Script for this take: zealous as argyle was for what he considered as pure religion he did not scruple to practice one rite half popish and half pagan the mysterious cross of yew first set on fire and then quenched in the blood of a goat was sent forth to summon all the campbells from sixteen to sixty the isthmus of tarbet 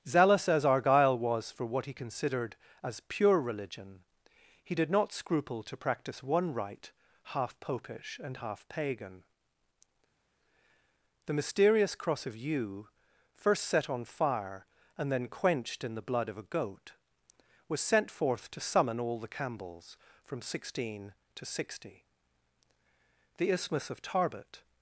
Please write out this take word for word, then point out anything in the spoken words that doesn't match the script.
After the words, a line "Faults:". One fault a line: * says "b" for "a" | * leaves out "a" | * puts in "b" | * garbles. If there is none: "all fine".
zealous as argyle was for what he considered as pure religion he did not scruple to practice one rite half popish and half pagan the mysterious cross of yew first set on fire and then quenched in the blood of a goat was sent forth to summon all the campbells from sixteen to sixty the isthmus of tarbet
Faults:
all fine